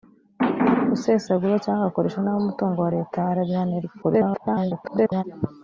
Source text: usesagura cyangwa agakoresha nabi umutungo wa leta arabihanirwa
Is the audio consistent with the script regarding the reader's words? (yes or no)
no